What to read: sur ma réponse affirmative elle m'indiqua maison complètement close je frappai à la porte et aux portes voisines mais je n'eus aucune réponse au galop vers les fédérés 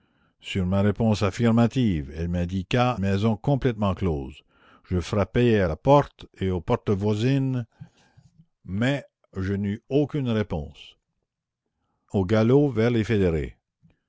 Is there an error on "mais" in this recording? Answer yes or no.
no